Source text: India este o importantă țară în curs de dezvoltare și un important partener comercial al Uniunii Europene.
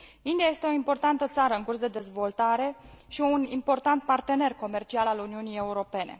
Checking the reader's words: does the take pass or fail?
pass